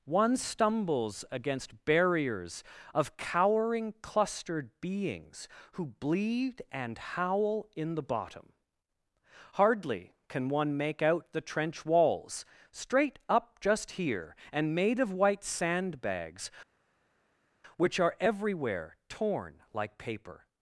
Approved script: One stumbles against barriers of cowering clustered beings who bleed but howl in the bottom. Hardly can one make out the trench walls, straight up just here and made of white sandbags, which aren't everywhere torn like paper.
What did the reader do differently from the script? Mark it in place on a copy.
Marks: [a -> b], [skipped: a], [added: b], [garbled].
One stumbles against barriers of cowering clustered beings who bleed [but -> and] howl in the bottom. Hardly can one make out the trench walls, straight up just here and made of white sandbags, which [aren't -> are] everywhere torn like paper.